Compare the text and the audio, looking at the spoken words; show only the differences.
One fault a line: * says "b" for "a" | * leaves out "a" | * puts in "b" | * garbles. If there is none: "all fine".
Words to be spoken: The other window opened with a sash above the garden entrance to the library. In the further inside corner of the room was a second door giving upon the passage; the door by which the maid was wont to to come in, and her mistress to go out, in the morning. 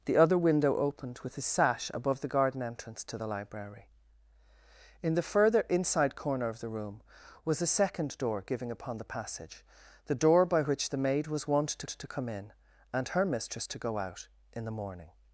all fine